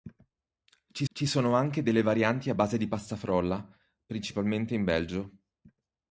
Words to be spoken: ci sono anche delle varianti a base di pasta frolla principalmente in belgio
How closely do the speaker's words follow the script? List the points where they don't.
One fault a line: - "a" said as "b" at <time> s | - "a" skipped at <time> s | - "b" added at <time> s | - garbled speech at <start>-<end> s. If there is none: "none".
- "ci" added at 1.1 s